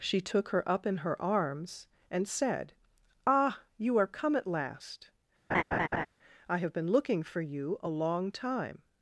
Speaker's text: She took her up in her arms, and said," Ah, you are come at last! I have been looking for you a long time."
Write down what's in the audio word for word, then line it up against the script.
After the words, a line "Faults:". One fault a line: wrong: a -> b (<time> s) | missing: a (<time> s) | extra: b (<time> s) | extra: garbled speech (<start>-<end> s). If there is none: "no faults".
She took her up in her arms, and said," Ah, you are come at last! I have been looking for you a long time."
Faults:
no faults